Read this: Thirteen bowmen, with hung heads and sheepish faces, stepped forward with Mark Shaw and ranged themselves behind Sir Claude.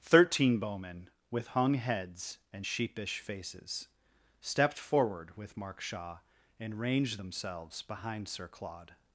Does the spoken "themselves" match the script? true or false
true